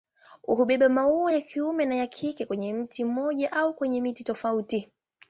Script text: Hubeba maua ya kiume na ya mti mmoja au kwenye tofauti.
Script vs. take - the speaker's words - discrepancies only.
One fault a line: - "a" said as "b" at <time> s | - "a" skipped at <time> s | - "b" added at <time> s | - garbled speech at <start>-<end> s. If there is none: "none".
- "kike kwenye" added at 2.1 s
- "miti" added at 4.0 s